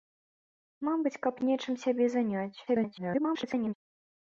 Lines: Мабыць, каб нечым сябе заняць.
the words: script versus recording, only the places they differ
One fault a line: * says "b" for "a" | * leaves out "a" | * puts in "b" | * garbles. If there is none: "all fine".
* garbles